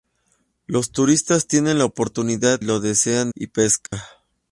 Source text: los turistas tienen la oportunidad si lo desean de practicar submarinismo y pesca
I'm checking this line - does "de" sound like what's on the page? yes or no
no